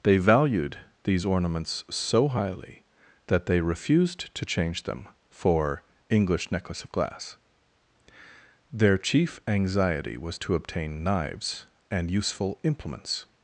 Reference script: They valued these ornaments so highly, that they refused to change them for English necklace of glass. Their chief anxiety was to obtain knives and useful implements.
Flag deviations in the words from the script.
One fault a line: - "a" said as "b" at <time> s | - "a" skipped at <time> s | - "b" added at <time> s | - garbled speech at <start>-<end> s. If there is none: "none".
none